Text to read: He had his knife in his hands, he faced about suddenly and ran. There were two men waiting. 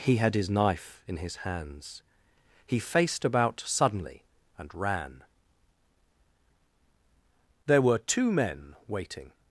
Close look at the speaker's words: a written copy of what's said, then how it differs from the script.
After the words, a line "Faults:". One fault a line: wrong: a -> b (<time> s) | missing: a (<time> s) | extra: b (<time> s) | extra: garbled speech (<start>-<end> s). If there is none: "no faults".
He had his knife in his hands, he faced about suddenly and ran. There were two men waiting.
Faults:
no faults